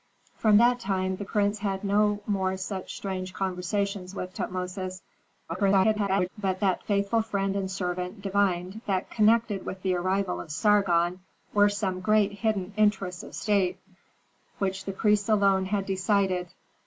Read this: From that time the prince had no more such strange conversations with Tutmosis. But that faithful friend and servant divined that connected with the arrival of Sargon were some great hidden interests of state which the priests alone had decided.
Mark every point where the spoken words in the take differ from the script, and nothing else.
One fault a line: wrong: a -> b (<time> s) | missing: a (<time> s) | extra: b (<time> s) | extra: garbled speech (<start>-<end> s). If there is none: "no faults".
extra: garbled speech (5.5-6.3 s)